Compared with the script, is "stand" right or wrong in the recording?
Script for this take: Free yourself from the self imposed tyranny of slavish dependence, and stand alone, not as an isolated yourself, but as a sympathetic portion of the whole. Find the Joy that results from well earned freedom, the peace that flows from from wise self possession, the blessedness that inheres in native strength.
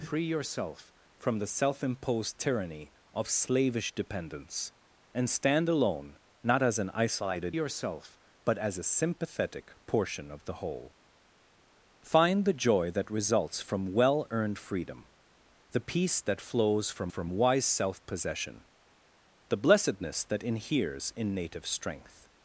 right